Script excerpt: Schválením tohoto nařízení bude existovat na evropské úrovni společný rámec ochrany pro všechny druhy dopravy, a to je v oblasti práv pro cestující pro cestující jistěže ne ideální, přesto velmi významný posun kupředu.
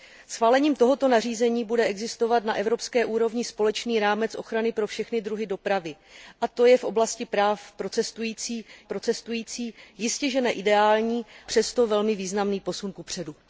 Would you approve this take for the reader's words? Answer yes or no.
yes